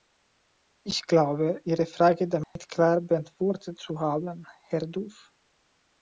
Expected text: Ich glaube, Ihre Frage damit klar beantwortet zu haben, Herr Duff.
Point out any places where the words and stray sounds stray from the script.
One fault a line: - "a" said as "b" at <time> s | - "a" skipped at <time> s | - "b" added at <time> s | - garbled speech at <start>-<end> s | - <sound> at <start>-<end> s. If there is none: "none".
- dropout at 2.4-2.6 s